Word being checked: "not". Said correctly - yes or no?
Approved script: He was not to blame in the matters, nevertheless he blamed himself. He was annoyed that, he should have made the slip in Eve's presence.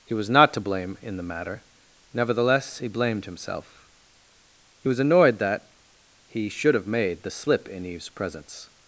yes